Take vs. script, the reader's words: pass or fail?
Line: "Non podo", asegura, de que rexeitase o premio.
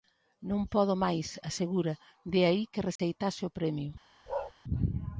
fail